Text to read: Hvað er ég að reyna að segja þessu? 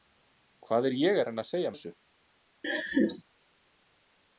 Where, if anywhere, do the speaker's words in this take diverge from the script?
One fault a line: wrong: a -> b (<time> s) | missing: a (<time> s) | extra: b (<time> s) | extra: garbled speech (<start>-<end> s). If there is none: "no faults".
no faults